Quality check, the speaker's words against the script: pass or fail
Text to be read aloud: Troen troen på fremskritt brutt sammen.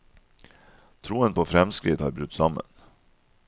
fail